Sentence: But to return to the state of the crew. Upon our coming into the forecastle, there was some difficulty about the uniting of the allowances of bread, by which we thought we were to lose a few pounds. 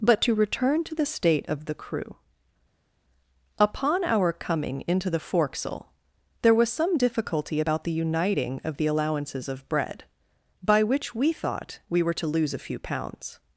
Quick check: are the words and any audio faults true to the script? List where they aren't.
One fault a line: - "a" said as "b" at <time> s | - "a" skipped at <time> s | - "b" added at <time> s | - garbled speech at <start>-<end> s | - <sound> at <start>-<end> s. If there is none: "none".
none